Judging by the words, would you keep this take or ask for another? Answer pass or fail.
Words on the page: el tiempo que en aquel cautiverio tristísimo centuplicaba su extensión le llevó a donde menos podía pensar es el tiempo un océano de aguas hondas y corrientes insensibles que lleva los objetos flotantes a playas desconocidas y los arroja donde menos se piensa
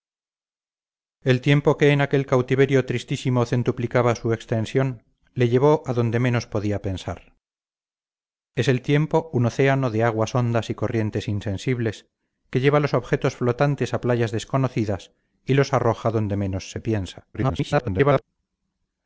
fail